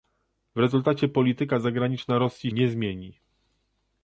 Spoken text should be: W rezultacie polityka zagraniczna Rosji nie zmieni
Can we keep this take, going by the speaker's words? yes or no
yes